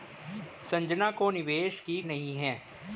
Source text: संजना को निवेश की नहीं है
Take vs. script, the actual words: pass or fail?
pass